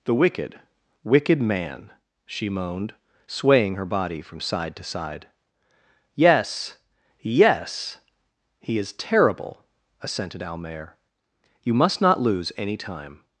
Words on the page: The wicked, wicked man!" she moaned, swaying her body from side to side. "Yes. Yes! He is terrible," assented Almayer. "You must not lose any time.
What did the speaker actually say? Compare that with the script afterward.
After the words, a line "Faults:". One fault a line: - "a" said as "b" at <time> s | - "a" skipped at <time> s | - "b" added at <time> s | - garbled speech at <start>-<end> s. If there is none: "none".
The wicked, wicked man!" she moaned, swaying her body from side to side. "Yes. Yes! He is terrible," assented Almayer. "You must not lose any time.
Faults:
none